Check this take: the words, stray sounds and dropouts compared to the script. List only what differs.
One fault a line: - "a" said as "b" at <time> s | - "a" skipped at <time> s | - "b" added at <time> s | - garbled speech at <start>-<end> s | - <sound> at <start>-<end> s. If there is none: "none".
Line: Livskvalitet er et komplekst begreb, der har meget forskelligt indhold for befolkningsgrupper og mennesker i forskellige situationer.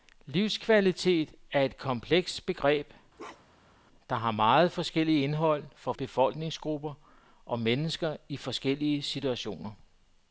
- bark at 3.2-3.8 s